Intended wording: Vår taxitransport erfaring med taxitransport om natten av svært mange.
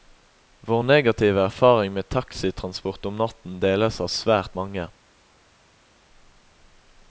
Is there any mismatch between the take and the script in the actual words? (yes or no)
yes